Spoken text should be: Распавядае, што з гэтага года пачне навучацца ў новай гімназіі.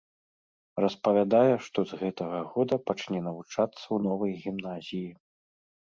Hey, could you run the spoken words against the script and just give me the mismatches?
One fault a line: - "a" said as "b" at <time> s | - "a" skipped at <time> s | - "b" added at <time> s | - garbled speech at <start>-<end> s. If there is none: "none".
none